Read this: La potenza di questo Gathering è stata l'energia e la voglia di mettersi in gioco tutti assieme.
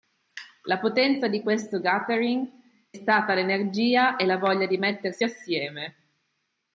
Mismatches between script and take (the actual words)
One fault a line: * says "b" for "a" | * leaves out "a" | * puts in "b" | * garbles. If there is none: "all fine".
* leaves out "è"
* leaves out "in gioco tutti"